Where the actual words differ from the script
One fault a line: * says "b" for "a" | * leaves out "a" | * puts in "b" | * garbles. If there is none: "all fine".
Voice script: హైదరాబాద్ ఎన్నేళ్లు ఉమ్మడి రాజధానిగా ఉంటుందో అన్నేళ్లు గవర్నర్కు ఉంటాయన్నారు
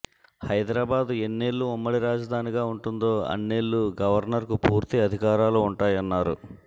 * puts in "పూర్తి అధికారాలు"